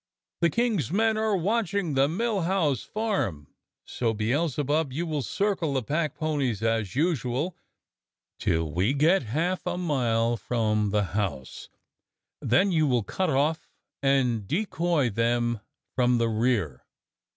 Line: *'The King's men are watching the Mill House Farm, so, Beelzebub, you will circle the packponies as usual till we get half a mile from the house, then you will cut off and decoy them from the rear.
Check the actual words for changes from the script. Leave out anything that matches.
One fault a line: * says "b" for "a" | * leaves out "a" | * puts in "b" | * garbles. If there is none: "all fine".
all fine